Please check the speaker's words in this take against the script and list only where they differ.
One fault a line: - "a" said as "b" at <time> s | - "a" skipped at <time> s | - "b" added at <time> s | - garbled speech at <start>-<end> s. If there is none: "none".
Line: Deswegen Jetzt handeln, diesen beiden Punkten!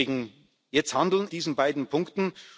none